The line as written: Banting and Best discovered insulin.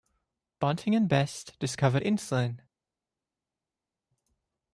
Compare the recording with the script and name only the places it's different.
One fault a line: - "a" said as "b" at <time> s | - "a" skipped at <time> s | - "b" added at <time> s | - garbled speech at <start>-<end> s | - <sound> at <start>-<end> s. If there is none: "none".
none